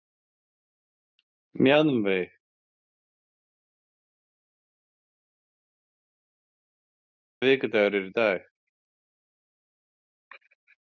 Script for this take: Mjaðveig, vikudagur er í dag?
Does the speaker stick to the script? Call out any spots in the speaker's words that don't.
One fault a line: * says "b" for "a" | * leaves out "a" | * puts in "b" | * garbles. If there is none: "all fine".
all fine